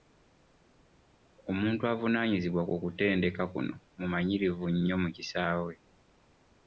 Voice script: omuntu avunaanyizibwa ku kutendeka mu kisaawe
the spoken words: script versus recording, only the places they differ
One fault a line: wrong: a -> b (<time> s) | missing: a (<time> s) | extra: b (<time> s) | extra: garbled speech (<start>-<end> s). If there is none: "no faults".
extra: kuno mumanyirivu nnyo (3.5 s)